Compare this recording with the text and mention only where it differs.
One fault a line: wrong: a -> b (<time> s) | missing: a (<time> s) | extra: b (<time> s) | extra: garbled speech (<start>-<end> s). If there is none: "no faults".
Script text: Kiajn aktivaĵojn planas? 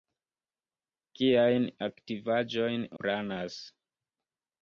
no faults